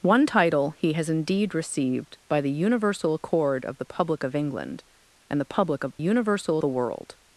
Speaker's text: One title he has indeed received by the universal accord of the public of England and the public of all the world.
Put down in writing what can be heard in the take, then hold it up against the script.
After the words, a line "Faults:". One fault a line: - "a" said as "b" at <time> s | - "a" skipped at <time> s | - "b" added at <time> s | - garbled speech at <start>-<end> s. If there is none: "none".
One title he has indeed received by the universal accord of the public of England and the public of universal the world.
Faults:
- "all" said as "universal" at 6.0 s